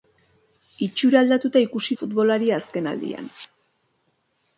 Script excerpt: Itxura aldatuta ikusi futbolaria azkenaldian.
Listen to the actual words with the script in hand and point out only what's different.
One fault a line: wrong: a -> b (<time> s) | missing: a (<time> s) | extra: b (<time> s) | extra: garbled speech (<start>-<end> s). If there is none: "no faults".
no faults